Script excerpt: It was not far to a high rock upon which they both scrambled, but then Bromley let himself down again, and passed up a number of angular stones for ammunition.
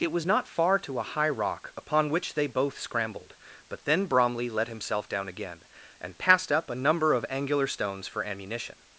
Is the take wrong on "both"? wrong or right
right